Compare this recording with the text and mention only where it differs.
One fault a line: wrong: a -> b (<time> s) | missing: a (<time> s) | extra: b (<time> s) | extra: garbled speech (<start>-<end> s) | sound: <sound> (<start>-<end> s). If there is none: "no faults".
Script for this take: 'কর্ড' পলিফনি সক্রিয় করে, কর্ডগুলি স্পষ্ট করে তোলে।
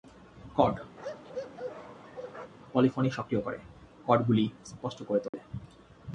sound: bark (1.0-2.5 s)
sound: dropout (5.3-5.3 s)